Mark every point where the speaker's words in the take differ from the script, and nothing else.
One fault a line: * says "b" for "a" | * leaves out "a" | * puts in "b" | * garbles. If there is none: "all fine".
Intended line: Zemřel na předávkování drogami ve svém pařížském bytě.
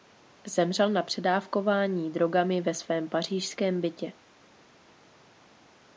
all fine